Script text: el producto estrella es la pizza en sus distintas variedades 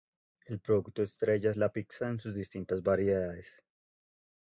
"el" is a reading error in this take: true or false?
false